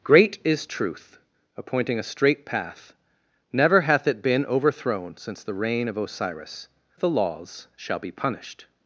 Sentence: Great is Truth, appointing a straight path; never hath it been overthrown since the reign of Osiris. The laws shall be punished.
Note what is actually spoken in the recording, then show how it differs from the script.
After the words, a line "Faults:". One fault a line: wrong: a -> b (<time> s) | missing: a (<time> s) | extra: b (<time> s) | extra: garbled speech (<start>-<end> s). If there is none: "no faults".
Great is Truth, appointing a straight path; never hath it been overthrown since the reign of Osiris. The laws shall be punished.
Faults:
no faults